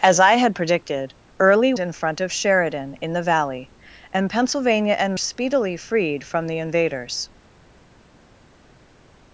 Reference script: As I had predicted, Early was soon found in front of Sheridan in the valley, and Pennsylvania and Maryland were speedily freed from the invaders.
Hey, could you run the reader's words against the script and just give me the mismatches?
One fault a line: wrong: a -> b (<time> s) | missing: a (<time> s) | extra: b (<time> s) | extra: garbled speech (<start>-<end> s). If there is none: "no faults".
missing: was soon found (1.8 s)
missing: Maryland were (5.1 s)